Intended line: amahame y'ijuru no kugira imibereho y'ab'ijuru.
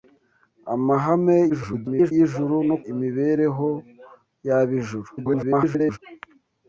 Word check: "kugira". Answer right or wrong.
wrong